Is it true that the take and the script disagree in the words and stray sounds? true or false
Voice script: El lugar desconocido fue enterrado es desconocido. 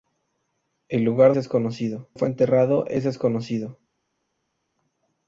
false